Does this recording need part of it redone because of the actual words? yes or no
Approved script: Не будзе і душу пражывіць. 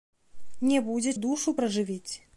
no